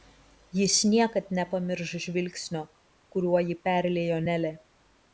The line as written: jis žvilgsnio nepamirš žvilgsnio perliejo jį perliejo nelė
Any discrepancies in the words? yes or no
yes